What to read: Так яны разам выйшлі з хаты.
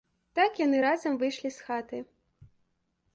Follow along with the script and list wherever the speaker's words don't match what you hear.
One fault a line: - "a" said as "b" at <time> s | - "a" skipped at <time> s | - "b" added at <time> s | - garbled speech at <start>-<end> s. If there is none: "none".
none